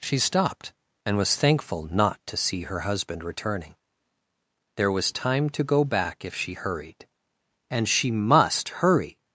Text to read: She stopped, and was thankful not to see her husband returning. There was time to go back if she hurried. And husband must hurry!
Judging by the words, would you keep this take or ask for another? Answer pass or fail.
fail